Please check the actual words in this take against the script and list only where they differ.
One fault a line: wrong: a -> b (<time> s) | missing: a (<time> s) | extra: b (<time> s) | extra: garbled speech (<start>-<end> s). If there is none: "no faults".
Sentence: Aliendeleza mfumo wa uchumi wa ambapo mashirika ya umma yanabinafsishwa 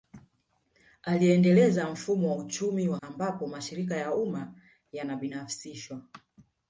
no faults